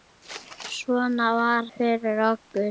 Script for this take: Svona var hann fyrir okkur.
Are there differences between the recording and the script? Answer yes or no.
yes